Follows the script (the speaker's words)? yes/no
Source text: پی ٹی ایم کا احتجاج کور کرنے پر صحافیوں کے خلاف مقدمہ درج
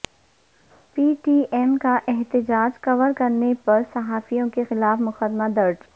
yes